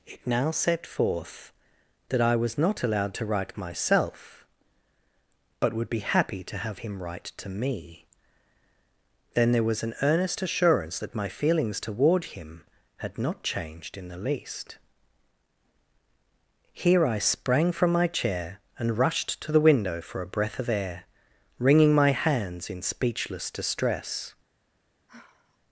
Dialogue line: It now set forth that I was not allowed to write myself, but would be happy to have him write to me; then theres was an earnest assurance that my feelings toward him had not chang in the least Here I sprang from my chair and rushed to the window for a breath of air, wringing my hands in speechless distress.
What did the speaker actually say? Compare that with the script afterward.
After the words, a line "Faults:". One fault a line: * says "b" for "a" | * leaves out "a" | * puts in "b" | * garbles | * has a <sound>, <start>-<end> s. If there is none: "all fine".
It now set forth that I was not allowed to write myself, but would be happy to have him write to me; then there was an earnest assurance that my feelings toward him had not changed in the least Here I sprang from my chair and rushed to the window for a breath of air, wringing my hands in speechless distress.
Faults:
* says "there" for "theres"
* says "changed" for "chang"
* has a sigh, 25.1-25.6 s